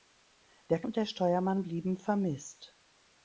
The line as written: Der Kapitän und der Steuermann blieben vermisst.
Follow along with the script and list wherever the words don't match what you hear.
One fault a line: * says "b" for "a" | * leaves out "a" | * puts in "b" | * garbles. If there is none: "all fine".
* leaves out "Kapitän"